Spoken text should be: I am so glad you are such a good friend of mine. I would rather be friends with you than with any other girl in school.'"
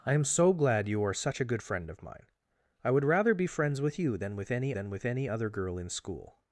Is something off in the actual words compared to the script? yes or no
yes